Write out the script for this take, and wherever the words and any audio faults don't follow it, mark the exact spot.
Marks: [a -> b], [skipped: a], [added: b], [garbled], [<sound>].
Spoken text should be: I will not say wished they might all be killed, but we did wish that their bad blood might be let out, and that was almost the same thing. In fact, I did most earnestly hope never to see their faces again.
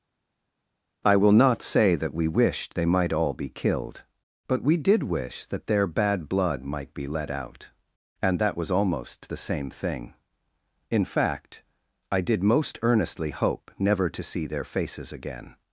I will not say [added: that we] wished they might all be killed, but we did wish that their bad blood might be let out, and that was almost the same thing. In fact, I did most earnestly hope never to see their faces again.